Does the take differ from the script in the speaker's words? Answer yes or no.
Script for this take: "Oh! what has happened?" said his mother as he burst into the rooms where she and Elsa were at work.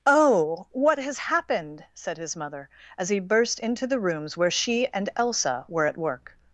no